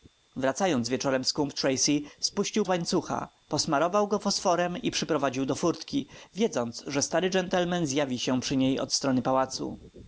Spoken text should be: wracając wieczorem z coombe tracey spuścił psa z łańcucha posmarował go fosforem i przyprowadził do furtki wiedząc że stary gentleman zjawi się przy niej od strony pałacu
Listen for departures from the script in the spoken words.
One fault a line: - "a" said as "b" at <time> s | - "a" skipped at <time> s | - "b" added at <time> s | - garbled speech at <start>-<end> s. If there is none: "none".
- "psa" skipped at 2.7 s